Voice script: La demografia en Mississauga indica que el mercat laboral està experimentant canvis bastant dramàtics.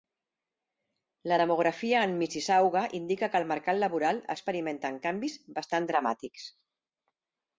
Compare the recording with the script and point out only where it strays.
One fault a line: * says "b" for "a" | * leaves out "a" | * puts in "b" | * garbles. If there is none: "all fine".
* leaves out "està"